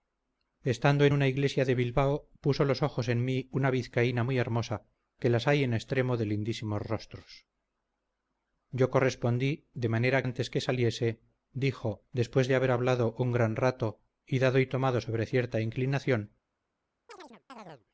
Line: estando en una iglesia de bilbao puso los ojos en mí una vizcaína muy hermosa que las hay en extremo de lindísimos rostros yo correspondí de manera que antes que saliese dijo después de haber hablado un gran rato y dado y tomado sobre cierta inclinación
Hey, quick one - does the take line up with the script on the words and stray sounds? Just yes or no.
no